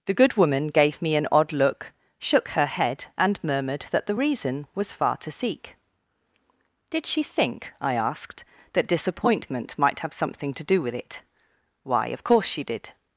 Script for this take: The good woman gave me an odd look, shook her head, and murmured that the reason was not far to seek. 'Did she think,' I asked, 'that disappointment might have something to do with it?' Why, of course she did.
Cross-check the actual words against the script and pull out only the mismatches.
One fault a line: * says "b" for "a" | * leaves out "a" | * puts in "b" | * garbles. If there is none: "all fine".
* leaves out "not"